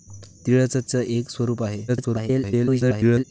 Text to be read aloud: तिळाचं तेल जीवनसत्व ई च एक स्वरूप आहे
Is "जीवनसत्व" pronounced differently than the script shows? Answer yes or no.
yes